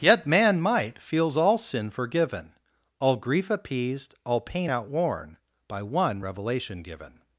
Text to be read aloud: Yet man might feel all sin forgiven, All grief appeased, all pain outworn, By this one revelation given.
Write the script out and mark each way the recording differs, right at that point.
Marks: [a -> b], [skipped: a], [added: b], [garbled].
Yet man might [feel -> feels] all sin forgiven, All grief appeased, all pain outworn, By [skipped: this] one revelation given.